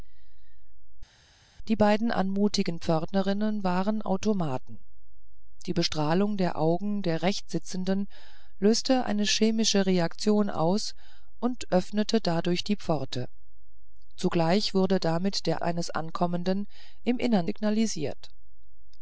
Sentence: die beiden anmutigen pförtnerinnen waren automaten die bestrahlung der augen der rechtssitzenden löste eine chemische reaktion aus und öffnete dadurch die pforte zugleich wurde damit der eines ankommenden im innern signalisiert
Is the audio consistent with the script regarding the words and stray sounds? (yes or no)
yes